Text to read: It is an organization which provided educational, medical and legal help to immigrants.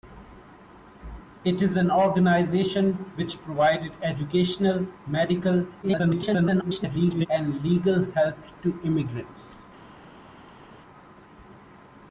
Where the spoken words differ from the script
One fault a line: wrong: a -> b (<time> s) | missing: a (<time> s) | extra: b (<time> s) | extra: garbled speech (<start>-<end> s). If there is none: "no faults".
extra: garbled speech (5.8-7.3 s)